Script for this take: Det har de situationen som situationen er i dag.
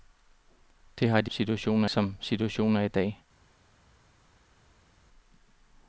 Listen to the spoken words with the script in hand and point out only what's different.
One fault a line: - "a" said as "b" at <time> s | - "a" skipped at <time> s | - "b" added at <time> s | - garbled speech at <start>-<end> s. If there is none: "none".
none